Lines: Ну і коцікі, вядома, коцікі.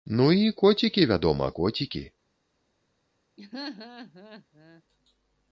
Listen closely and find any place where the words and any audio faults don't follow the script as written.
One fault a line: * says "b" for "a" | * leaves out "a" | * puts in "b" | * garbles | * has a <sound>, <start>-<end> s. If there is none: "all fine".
* has a laugh, 3.4-4.8 s